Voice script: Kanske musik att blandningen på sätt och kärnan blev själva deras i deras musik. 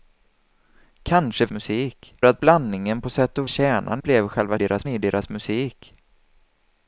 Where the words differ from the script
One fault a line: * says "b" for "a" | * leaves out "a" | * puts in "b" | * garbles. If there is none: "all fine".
all fine